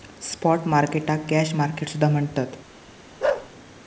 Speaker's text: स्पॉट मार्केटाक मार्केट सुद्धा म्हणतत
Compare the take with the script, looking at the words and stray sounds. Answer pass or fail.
fail